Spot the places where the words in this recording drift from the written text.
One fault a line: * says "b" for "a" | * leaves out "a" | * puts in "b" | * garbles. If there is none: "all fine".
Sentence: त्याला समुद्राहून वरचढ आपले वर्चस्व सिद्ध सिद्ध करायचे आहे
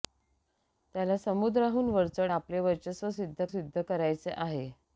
all fine